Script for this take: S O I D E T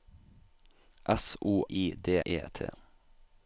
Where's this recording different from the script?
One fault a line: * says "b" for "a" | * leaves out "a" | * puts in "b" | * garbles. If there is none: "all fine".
all fine